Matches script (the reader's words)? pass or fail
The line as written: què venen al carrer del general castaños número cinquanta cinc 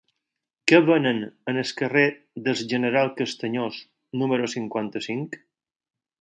pass